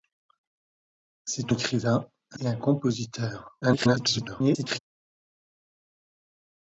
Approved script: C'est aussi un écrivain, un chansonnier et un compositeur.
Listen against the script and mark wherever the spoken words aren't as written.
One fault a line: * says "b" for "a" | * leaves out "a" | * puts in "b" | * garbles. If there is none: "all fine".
* leaves out "aussi un"
* leaves out "chansonnier"
* garbles